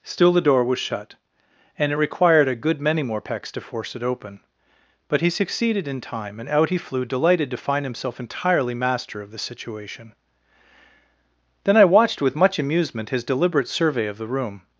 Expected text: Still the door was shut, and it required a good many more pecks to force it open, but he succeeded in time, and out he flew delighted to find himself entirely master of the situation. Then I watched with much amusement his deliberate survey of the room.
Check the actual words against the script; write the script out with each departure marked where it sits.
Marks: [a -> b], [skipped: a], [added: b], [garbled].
Still the door was shut, and it required a good many more pecks to force it open, but he succeeded in time, and out he flew delighted to find himself entirely master of the situation. Then I watched with much amusement his deliberate survey of the room.